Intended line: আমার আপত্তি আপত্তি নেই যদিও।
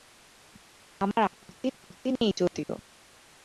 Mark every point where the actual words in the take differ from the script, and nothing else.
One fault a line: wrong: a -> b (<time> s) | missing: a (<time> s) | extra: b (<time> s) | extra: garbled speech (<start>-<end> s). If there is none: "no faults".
no faults